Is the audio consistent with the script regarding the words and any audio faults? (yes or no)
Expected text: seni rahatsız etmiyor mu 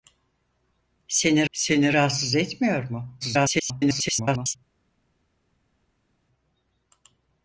no